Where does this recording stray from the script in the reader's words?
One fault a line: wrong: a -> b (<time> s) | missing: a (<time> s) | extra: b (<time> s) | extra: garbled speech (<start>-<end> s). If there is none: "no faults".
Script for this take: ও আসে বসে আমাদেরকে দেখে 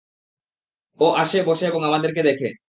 extra: এবং (1.7 s)